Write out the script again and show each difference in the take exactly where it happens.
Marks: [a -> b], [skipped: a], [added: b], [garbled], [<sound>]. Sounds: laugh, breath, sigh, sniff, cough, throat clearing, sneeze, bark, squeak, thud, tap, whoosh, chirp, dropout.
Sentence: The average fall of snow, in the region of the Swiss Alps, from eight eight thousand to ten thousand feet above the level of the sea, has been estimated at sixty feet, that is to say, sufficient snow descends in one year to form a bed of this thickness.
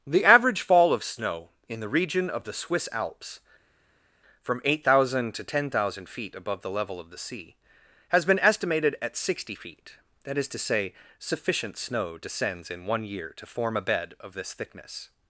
The average fall of snow, in the region of the Swiss Alps, from eight [skipped: eight] thousand to ten thousand feet above the level of the sea, has been estimated at sixty feet, that is to say, sufficient snow descends in one year to form a bed of this thickness.